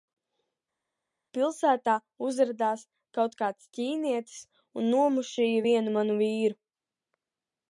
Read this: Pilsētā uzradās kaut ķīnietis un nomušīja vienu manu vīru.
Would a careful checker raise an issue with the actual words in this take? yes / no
yes